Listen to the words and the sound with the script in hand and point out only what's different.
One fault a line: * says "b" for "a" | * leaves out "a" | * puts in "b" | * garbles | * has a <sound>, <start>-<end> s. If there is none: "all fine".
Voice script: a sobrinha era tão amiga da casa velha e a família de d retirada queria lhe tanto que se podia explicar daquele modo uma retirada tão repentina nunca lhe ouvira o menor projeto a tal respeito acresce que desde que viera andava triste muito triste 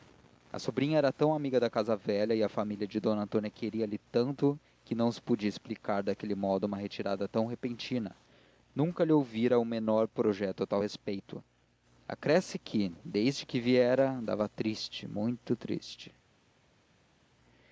* says "antônia" for "retirada"
* puts in "não"